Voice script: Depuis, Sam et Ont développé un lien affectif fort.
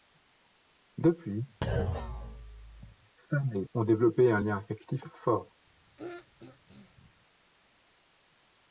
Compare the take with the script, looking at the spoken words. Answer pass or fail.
pass